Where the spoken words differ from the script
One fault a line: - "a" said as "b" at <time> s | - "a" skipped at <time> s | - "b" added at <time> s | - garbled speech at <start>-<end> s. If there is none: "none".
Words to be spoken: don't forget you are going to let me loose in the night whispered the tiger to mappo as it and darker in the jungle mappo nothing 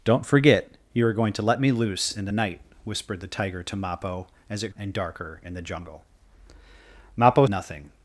none